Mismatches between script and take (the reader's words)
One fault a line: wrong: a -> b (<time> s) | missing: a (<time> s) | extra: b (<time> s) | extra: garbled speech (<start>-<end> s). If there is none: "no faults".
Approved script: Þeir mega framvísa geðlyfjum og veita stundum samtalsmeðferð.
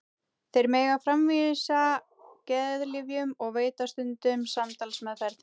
no faults